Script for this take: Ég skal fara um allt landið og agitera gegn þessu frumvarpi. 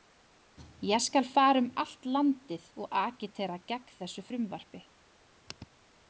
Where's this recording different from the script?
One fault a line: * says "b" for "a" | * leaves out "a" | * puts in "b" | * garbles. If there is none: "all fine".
all fine